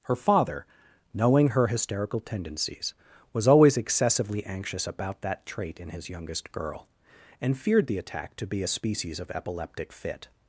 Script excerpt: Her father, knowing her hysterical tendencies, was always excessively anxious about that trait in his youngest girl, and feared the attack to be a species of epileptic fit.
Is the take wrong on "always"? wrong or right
right